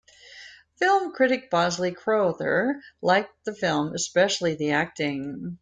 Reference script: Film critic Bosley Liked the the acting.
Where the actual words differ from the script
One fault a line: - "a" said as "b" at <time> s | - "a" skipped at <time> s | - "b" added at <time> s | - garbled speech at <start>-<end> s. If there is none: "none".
- "Crowther" added at 1.9 s
- "film especially" added at 3.5 s